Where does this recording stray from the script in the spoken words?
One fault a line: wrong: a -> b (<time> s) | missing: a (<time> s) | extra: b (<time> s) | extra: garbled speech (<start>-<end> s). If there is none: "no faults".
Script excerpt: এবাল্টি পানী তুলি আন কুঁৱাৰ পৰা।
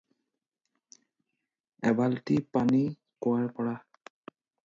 missing: তুলি আন (2.8 s)